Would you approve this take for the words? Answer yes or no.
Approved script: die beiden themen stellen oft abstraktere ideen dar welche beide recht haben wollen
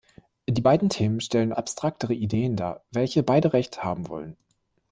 no